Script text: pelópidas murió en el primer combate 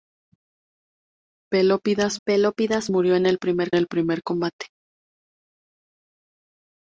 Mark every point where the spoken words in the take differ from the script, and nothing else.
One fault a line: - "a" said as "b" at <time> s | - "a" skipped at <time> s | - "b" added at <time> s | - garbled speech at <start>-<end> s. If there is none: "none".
- "pelópidas" added at 2.3 s
- "el primer" added at 3.7 s